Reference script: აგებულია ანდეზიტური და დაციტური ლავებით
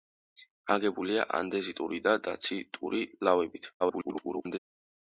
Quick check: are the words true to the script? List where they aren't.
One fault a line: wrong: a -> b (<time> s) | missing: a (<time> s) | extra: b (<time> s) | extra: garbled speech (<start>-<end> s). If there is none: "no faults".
extra: garbled speech (3.8-4.6 s)